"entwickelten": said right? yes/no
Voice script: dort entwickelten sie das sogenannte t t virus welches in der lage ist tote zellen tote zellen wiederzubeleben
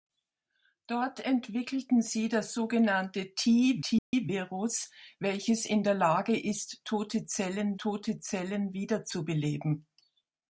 yes